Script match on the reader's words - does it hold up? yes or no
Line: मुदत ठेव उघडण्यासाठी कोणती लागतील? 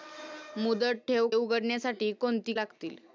yes